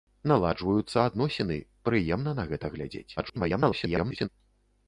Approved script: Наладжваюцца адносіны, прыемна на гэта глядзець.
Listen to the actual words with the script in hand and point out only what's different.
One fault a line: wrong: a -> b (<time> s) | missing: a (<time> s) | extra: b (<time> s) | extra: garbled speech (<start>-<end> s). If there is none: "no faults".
extra: garbled speech (3.2-4.3 s)